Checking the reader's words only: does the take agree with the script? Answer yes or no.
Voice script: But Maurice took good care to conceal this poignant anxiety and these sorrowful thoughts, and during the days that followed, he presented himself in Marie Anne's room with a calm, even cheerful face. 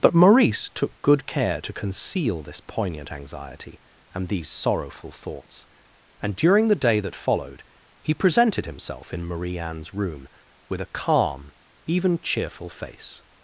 no